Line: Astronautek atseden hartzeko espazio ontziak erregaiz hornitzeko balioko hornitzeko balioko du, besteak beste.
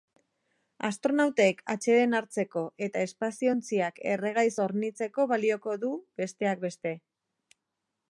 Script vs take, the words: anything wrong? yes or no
yes